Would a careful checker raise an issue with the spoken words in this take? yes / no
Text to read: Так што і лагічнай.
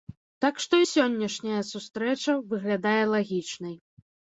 yes